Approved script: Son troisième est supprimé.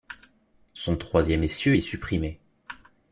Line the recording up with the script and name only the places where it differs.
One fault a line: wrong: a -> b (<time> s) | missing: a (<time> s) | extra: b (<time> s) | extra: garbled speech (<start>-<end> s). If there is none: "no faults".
extra: essieu (1.4 s)